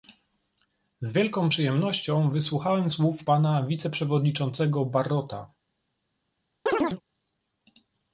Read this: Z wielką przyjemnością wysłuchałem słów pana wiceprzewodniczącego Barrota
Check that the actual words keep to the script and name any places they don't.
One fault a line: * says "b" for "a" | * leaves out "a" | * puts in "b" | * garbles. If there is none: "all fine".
all fine